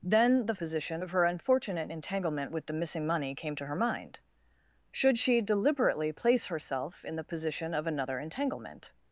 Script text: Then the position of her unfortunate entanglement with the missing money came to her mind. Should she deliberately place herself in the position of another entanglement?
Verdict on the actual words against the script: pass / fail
pass